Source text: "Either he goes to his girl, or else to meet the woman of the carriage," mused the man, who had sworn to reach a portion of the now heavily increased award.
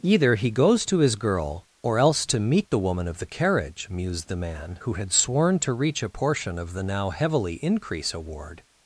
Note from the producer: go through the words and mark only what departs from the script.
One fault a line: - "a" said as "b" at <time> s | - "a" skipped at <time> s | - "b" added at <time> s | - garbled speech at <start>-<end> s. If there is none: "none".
- "increased" said as "increase" at 7.6 s